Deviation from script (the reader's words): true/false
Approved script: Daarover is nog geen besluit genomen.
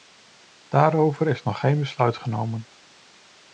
false